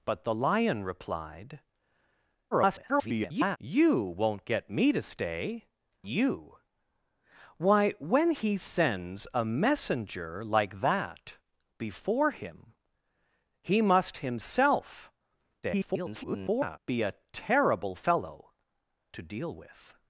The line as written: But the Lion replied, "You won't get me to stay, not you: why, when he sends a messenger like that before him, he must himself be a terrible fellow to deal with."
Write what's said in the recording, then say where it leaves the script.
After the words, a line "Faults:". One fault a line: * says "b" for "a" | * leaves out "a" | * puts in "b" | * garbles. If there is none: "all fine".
But the Lion replied, [garbled] "You won't get me to stay, you: why, when he sends a messenger like that before him, he must himself [garbled] be a terrible fellow to deal with."
Faults:
* garbles
* leaves out "not"
* garbles